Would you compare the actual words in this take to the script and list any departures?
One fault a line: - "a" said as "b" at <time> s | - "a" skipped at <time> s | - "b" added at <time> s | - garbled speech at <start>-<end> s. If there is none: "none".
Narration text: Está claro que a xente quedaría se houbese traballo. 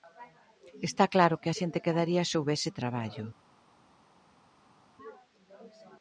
none